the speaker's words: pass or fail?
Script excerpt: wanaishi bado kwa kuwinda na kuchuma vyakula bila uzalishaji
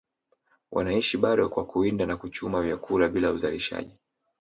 pass